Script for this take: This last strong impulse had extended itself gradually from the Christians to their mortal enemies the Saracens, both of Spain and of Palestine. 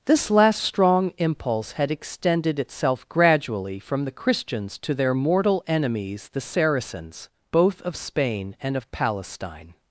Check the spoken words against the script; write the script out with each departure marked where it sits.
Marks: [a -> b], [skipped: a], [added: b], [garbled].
This last strong impulse had extended itself gradually from the Christians to their mortal enemies the Saracens, both of Spain and of Palestine.